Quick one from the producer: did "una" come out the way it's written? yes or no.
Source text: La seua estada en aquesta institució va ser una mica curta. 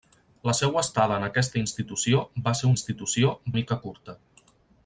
no